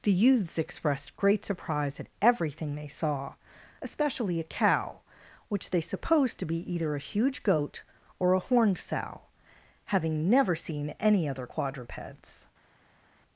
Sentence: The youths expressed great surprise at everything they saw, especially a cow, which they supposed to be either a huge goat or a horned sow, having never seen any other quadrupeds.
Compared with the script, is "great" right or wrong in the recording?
right